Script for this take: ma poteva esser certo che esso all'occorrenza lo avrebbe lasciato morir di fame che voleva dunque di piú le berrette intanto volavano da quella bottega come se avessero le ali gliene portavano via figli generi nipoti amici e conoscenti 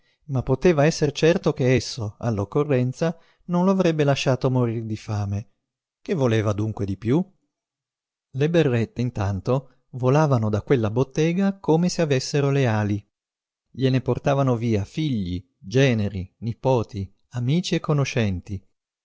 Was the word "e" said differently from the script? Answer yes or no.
no